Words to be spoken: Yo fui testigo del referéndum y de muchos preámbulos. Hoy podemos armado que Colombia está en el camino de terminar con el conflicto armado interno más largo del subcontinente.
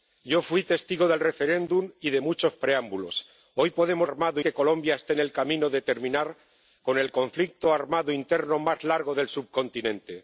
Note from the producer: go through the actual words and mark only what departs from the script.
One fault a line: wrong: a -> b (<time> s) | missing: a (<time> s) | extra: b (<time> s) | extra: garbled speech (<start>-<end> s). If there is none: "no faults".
no faults